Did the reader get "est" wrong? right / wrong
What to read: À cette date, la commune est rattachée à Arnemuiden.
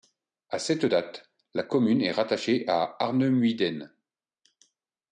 right